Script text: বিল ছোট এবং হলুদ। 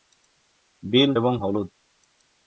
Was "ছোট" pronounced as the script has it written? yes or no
no